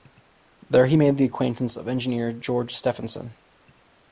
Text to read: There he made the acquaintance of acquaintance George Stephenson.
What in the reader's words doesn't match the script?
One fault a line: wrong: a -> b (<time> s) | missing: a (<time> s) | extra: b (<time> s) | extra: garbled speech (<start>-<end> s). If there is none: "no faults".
wrong: acquaintance -> engineer (1.9 s)